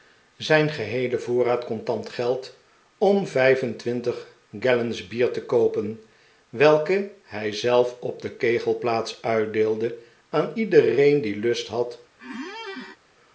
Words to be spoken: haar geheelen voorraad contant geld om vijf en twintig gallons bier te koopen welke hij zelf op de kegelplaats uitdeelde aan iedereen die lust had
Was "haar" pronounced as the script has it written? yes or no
no